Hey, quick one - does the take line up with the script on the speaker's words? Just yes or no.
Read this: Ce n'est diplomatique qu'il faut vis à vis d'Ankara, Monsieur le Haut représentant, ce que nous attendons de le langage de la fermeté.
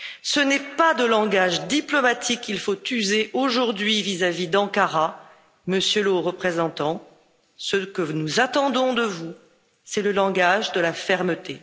no